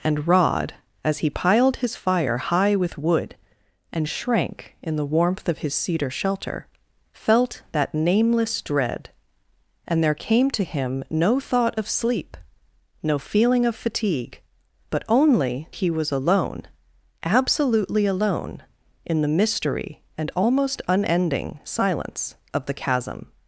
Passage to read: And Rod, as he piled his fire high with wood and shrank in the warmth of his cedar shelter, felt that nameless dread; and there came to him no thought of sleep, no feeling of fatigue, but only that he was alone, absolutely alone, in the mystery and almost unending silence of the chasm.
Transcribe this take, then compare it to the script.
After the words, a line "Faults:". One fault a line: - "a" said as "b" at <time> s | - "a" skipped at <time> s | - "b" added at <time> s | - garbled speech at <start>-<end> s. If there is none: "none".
And Rod, as he piled his fire high with wood and shrank in the warmth of his cedar shelter, felt that nameless dread; and there came to him no thought of sleep, no feeling of fatigue, but only he was alone, absolutely alone, in the mystery and almost unending silence of the chasm.
Faults:
- "that" skipped at 15.7 s